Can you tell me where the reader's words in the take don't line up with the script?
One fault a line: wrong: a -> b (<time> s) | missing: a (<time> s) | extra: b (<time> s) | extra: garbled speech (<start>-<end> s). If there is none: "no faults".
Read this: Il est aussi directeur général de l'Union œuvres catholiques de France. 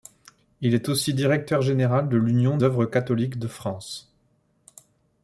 no faults